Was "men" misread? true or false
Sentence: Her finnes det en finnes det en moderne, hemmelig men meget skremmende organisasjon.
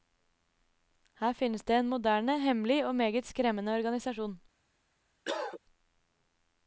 true